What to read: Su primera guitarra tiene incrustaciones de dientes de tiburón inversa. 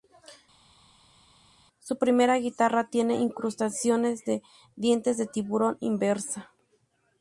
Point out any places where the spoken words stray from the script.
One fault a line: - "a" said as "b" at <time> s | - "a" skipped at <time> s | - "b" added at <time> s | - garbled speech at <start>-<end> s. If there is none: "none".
none